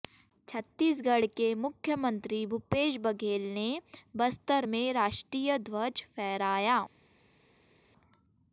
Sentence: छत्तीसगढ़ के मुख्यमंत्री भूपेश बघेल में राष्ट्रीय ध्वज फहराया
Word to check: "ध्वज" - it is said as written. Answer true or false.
true